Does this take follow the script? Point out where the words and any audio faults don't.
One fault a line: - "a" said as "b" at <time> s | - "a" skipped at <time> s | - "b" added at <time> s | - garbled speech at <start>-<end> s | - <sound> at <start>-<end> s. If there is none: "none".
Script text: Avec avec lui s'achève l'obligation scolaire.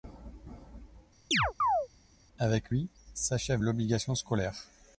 - chirp at 1.3-1.9 s
- "avec" skipped at 2.7 s